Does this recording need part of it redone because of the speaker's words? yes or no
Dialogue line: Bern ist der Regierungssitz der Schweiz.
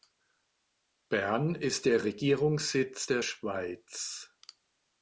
no